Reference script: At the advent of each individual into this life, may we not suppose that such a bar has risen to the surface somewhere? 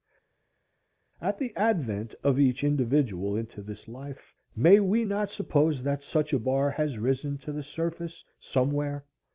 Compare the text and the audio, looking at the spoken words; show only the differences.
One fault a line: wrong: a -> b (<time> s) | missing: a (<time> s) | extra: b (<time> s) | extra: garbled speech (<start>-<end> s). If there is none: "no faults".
no faults